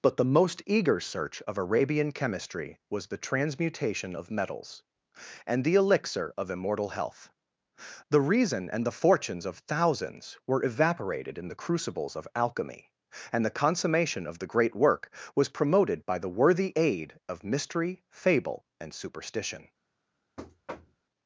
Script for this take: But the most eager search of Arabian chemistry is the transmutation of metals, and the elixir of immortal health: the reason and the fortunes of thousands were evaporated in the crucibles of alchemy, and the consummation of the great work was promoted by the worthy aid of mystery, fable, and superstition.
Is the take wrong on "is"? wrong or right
wrong